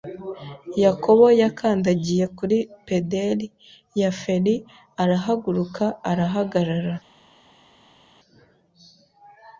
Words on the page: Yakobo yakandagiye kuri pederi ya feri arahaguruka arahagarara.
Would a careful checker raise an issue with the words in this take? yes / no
no